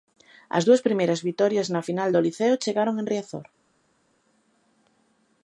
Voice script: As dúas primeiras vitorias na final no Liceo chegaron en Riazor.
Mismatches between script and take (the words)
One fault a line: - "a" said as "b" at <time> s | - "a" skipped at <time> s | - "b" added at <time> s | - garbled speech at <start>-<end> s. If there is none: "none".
- "no" said as "do" at 2.1 s